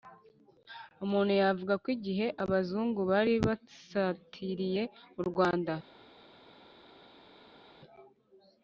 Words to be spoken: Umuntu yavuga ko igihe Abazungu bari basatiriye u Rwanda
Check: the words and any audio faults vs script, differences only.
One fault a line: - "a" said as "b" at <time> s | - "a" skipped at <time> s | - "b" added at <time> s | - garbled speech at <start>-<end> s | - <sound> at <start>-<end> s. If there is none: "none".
none